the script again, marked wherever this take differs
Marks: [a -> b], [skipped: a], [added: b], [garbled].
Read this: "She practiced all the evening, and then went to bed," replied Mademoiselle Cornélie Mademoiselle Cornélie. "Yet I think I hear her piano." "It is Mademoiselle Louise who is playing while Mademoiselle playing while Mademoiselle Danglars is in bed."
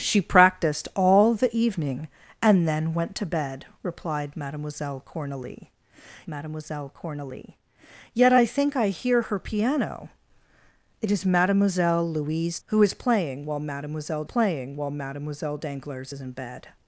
"She practiced all the evening, and then went to bed," replied Mademoiselle Cornélie Mademoiselle Cornélie. "Yet I think I hear her piano." "It is Mademoiselle Louise who is playing while Mademoiselle playing while Mademoiselle Danglars is in bed."